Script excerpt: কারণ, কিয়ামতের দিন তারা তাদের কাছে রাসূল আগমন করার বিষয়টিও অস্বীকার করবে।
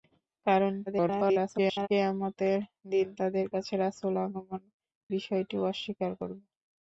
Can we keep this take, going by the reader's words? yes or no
no